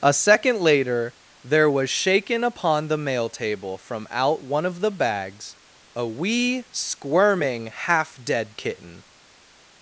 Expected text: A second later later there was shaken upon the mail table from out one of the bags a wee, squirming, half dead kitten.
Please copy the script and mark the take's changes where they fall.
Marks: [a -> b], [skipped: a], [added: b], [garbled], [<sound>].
A second later [skipped: later] there was shaken upon the mail table from out one of the bags a wee, squirming, half dead kitten.